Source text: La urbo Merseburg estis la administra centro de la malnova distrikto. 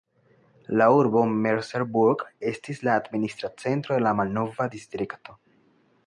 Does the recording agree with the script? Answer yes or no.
yes